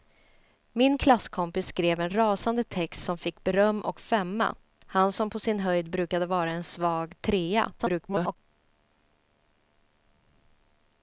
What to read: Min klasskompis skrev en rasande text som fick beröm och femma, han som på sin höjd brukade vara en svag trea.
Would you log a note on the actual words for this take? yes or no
yes